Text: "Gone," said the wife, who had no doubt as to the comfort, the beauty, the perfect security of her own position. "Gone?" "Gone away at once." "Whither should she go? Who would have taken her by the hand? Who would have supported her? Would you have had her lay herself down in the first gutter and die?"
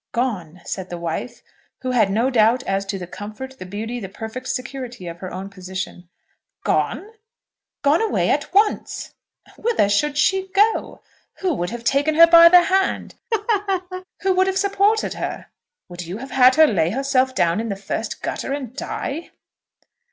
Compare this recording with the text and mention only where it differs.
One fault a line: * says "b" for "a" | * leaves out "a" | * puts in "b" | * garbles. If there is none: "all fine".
all fine